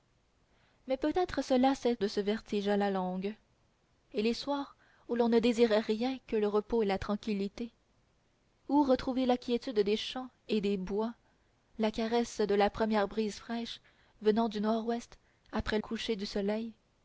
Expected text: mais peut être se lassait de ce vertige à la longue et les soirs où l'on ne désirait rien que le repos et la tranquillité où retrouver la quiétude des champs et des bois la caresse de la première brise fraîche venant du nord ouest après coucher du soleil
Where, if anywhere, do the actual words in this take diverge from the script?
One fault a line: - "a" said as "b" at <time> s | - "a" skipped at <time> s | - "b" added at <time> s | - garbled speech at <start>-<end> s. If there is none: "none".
none